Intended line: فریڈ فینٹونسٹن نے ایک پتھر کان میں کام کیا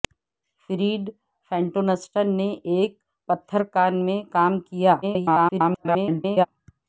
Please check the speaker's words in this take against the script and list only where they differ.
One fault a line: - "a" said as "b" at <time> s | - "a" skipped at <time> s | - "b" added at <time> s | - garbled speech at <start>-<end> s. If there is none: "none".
- garbled speech at 5.0-6.5 s